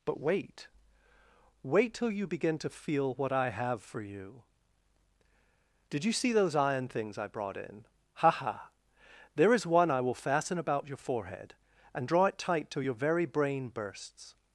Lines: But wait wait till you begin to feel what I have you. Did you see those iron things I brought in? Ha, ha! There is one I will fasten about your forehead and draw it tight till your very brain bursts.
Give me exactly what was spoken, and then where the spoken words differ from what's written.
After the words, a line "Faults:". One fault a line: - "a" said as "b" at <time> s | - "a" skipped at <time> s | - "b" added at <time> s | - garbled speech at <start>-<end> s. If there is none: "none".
But wait wait till you begin to feel what I have for you. Did you see those iron things I brought in? Ha, ha! There is one I will fasten about your forehead and draw it tight till your very brain bursts.
Faults:
- "for" added at 3.8 s